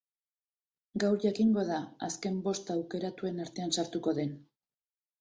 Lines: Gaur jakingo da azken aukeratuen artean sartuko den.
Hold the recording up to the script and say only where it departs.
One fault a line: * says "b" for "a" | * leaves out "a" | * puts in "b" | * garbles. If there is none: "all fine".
* puts in "bost"